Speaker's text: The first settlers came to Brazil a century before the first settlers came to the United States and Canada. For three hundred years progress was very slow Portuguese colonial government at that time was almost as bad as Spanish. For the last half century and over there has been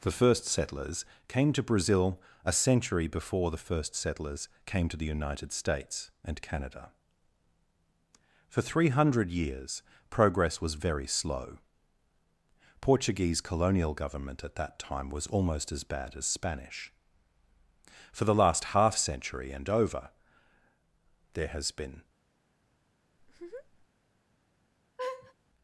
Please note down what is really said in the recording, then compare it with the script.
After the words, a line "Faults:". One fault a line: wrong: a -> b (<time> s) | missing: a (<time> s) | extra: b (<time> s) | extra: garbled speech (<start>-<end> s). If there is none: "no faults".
The first settlers came to Brazil a century before the first settlers came to the United States and Canada. For three hundred years progress was very slow Portuguese colonial government at that time was almost as bad as Spanish. For the last half century and over there has been
Faults:
no faults